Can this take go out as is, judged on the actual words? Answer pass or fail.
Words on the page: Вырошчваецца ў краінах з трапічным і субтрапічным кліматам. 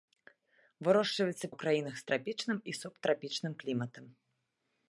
pass